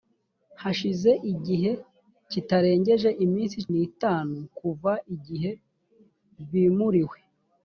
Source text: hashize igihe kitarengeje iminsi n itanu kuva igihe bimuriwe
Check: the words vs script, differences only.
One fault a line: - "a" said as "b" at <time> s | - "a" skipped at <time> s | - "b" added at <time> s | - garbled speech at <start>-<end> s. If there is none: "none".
none